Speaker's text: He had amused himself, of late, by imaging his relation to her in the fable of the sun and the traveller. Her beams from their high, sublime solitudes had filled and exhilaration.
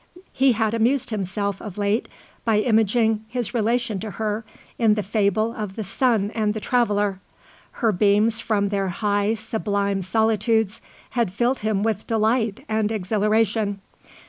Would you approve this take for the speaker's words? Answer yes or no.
no